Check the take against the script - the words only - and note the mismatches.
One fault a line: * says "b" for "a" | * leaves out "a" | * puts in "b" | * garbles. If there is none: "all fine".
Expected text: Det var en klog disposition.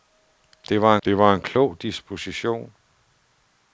* puts in "det var"